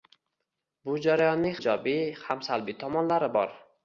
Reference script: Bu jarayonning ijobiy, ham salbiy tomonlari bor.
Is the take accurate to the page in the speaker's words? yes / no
yes